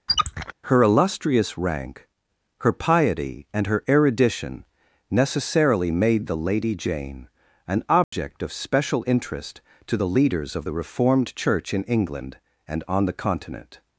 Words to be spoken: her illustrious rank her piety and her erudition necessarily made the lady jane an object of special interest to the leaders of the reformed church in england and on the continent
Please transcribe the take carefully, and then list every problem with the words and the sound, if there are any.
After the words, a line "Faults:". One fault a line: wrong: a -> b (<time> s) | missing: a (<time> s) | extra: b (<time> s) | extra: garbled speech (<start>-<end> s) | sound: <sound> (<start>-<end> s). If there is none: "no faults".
her illustrious rank her piety and her erudition necessarily made the lady jane an object of special interest to the leaders of the reformed church in england and on the continent
Faults:
sound: squeak (0.1-0.5 s)
sound: dropout (8.0-8.1 s)